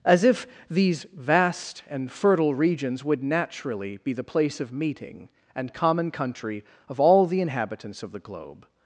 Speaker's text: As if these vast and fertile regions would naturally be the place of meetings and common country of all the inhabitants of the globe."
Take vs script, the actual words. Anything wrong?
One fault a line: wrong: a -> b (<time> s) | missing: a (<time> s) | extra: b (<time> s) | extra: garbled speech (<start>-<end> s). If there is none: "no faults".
wrong: meetings -> meeting (4.7 s)